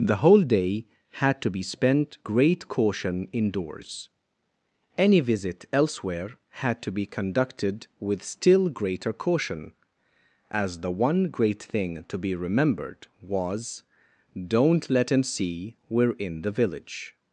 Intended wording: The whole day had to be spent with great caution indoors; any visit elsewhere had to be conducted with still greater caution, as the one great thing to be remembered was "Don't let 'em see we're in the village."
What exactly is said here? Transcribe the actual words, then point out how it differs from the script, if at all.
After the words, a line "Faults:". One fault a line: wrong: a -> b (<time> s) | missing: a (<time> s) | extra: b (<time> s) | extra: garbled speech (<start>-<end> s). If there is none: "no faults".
The whole day had to be spent great caution indoors; any visit elsewhere had to be conducted with still greater caution, as the one great thing to be remembered was "Don't let 'em see we're in the village."
Faults:
missing: with (2.2 s)